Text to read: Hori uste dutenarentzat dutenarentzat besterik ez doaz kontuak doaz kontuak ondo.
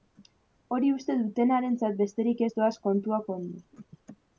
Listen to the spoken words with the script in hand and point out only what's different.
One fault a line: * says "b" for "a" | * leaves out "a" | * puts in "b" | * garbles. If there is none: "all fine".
* leaves out "dutenarentzat"
* leaves out "doaz kontuak"